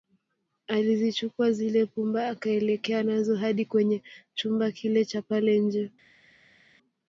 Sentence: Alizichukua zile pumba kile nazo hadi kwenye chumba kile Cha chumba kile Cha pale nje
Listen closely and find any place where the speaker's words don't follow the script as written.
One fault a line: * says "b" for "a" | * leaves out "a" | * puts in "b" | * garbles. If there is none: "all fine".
* says "akaelekea" for "kile"
* leaves out "chumba kile Cha"